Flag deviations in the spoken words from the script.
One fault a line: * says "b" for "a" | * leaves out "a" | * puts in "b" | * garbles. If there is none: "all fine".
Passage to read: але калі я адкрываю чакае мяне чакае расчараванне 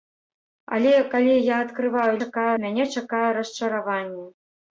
all fine